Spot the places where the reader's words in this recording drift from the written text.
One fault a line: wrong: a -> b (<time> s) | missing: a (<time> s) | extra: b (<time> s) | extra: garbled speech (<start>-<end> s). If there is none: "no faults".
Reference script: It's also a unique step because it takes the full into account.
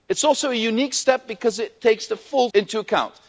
no faults